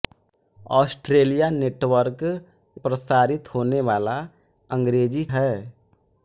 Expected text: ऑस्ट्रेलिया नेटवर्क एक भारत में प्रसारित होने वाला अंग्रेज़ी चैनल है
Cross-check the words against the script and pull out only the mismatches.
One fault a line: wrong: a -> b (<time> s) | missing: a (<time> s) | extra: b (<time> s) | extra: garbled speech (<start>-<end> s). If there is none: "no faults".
missing: एक भारत में (2.2 s)
missing: चैनल (5.2 s)